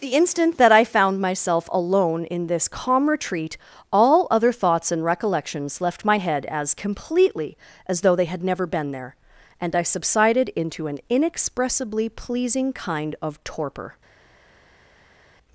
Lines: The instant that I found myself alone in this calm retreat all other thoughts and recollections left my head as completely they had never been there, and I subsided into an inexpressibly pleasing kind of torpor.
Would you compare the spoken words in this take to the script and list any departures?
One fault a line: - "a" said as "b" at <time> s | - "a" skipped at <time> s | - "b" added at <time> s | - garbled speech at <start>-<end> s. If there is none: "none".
- "as though" added at 7.9 s